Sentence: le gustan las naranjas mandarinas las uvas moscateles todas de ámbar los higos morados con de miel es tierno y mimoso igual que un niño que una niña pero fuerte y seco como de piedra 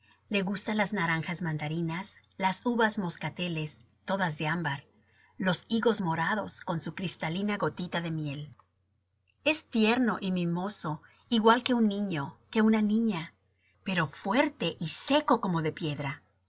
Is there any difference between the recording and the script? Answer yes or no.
yes